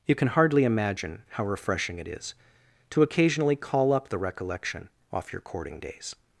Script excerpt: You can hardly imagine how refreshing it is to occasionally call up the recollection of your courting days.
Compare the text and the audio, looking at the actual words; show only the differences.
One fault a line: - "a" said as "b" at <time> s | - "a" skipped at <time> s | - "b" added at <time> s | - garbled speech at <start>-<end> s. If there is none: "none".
- "of" said as "off" at 5.1 s